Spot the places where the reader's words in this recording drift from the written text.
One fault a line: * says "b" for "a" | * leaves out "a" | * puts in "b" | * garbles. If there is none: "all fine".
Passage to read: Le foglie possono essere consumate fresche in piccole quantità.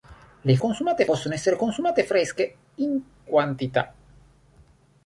* says "consumate" for "foglie"
* leaves out "piccole"